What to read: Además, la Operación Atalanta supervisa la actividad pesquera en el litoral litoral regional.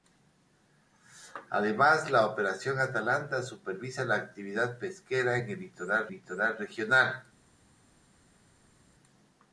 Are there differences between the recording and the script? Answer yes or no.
no